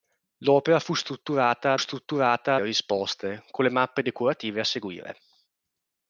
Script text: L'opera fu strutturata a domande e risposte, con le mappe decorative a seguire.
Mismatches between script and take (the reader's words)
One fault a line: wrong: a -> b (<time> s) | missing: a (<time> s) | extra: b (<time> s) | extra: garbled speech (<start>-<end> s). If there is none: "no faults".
wrong: domande -> strutturata (1.8 s)